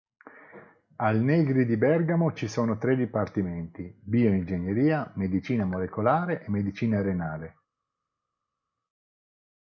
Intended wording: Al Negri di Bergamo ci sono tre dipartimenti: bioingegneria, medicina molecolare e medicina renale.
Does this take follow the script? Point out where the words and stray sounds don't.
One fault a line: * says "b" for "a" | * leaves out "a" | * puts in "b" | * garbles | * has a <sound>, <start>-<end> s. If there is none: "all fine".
all fine